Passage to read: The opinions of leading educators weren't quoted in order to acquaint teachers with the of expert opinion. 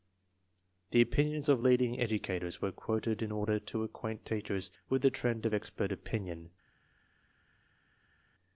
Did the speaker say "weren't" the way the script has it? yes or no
no